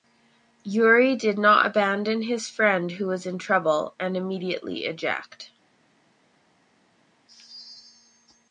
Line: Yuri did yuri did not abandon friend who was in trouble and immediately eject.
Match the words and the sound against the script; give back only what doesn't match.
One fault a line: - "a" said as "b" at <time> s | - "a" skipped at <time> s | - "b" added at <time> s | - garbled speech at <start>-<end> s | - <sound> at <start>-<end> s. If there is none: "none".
- "yuri did" skipped at 1.4 s
- "his" added at 2.2 s